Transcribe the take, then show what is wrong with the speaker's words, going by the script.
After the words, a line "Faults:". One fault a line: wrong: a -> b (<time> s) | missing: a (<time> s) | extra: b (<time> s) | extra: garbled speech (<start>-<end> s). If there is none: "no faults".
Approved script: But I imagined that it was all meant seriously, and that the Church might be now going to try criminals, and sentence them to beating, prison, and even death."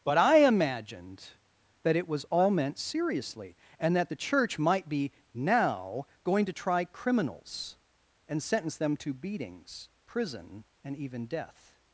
But I imagined that it was all meant seriously, and that the Church might be now going to try criminals, and sentence them to beatings, prison, and even death."
Faults:
wrong: beating -> beatings (9.1 s)